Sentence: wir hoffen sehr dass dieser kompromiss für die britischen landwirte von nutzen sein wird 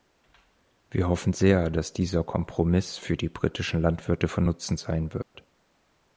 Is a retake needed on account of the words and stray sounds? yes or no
yes